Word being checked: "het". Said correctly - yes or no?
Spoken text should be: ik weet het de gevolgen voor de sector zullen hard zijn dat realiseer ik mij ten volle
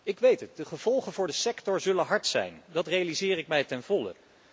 yes